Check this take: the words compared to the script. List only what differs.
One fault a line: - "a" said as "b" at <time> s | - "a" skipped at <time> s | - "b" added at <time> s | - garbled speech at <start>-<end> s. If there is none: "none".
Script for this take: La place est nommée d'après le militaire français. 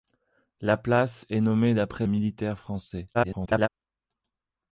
- "le" skipped at 2.1 s
- garbled speech at 3.1-3.7 s